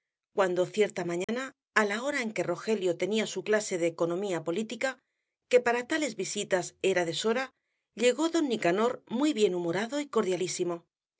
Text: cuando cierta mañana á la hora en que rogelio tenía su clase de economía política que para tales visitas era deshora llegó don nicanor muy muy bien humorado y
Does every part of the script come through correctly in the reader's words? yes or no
no